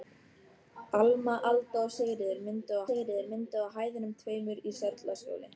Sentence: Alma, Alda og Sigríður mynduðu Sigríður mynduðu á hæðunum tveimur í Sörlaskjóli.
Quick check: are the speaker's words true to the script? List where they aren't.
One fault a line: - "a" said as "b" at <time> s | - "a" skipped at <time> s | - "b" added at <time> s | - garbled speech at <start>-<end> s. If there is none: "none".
none